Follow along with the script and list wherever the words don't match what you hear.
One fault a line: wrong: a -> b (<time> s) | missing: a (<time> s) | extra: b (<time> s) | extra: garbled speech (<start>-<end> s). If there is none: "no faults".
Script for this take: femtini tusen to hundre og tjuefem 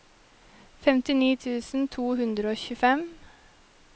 no faults